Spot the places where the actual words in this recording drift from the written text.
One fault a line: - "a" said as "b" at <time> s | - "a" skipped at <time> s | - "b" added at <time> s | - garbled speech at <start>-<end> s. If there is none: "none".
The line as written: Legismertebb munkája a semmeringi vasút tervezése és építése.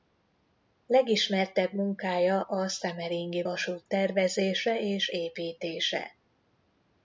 none